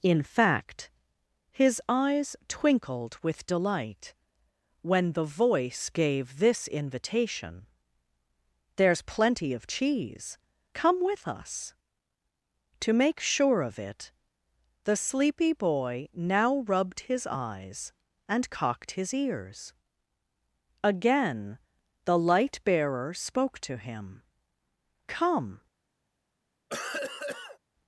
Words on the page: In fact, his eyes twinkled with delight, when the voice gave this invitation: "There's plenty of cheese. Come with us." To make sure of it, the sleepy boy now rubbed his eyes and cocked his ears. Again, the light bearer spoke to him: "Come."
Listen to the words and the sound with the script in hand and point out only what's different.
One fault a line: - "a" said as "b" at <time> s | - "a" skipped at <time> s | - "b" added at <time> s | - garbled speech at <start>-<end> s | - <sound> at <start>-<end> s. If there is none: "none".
- cough at 26.7-27.6 s